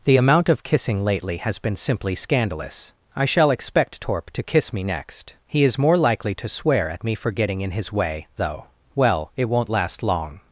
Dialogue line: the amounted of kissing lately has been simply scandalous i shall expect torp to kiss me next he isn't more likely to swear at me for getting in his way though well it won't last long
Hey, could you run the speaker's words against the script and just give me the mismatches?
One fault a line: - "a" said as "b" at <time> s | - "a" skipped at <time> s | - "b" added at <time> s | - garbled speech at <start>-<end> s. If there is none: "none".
- "amounted" said as "amount" at 0.2 s
- "isn't" said as "is" at 5.6 s